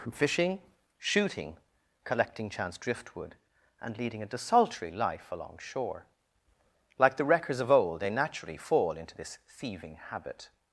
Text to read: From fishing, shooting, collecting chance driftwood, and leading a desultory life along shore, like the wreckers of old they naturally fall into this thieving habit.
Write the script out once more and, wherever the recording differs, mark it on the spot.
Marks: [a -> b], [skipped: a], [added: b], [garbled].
From fishing, shooting, collecting chance driftwood, and leading a desultory life along shore, like the wreckers of old they naturally fall into this thieving habit.